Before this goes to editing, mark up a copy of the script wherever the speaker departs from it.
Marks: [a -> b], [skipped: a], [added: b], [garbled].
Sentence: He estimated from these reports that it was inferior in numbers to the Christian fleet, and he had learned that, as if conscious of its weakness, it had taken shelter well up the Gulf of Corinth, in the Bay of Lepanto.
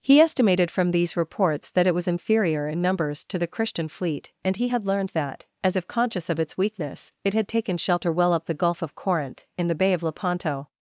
He estimated from these reports that it was inferior in numbers to the Christian fleet, and he had learned that, as if conscious of its weakness, it had taken shelter well up the Gulf of Corinth, in the Bay of Lepanto.